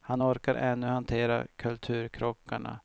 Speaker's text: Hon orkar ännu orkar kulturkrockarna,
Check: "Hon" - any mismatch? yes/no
yes